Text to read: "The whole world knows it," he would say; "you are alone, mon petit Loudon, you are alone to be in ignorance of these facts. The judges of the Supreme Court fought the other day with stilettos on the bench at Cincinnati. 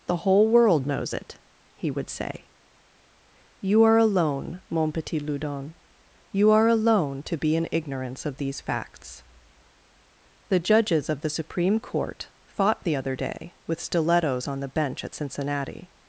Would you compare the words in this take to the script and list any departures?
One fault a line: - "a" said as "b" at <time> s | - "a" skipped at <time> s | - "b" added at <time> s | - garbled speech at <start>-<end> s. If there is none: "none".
none